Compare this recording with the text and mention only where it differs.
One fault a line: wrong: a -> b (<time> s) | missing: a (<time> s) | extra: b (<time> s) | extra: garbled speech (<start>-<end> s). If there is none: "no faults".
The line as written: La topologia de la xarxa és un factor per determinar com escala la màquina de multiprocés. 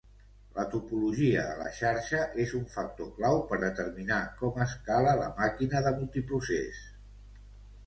extra: clau (3.2 s)